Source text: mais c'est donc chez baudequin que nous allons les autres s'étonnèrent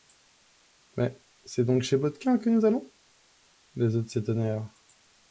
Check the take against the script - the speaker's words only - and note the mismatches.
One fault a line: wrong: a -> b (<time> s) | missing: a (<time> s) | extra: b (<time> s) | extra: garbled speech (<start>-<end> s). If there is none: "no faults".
no faults